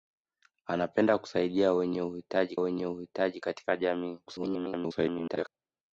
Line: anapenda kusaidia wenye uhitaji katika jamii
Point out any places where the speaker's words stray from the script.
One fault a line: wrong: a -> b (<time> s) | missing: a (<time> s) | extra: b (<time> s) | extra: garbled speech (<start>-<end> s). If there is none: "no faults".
extra: wenye uhitaji (2.6 s)
extra: garbled speech (4.3-5.5 s)